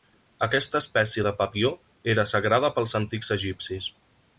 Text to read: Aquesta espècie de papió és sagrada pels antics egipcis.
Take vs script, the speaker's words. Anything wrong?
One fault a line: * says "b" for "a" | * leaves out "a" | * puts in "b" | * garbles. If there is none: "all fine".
* says "era" for "és"